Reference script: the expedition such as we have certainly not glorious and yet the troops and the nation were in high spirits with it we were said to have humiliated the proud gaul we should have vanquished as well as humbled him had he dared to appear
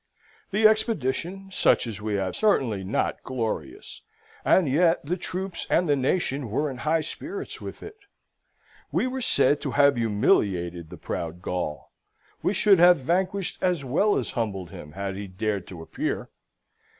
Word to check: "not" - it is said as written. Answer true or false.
true